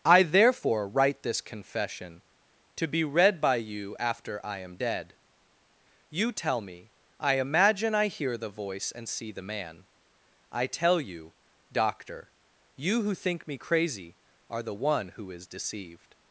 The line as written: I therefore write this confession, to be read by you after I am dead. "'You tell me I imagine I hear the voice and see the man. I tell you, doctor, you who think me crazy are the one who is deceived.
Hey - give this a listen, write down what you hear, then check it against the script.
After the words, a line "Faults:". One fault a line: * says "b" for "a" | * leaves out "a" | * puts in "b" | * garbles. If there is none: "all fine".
I therefore write this confession, to be read by you after I am dead. "'You tell me I imagine I hear the voice and see the man. I tell you, doctor, you who think me crazy are the one who is deceived.
Faults:
all fine